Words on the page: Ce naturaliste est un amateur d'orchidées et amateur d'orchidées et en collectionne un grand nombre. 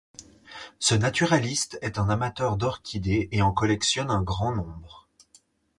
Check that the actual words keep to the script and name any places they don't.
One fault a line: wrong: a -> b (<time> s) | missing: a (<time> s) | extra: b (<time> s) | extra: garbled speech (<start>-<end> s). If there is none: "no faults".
missing: amateur d'orchidées et (3.4 s)